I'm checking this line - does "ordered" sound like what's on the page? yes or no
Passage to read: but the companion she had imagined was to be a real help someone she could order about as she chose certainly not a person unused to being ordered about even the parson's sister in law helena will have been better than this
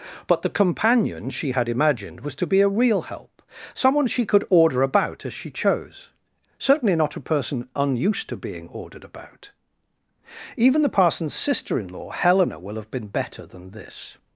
yes